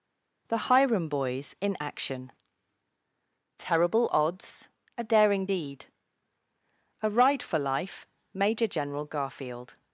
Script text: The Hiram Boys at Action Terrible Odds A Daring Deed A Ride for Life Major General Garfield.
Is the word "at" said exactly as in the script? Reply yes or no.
no